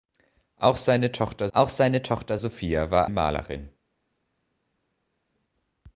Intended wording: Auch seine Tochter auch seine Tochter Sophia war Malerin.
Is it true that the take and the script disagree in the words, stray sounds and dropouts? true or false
false